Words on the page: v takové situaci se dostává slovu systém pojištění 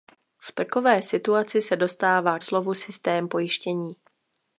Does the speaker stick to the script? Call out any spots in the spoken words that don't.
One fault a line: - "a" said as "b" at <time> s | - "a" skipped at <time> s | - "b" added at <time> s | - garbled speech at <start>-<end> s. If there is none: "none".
none